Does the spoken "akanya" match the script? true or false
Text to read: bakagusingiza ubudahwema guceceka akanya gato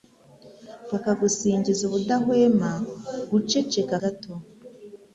false